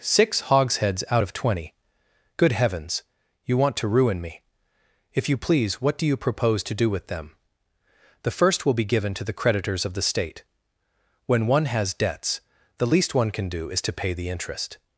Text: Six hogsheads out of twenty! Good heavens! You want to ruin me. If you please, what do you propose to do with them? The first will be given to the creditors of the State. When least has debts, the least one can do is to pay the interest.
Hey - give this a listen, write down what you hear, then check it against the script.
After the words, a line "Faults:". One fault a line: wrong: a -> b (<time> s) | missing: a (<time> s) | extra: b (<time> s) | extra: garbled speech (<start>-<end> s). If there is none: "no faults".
Six hogsheads out of twenty! Good heavens! You want to ruin me. If you please, what do you propose to do with them? The first will be given to the creditors of the State. When one has debts, the least one can do is to pay the interest.
Faults:
wrong: least -> one (11.5 s)